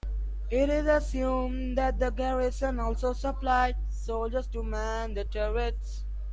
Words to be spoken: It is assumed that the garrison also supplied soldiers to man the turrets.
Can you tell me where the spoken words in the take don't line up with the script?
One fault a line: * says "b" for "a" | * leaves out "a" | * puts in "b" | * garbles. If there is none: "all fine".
all fine